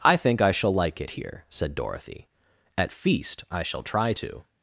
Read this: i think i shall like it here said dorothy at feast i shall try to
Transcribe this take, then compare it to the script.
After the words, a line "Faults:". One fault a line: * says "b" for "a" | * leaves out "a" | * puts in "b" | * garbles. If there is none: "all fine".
i think i shall like it here said dorothy at feast i shall try to
Faults:
all fine